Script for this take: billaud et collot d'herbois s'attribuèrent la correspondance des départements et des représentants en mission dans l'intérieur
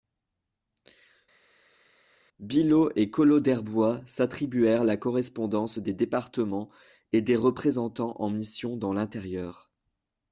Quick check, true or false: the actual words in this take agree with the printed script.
true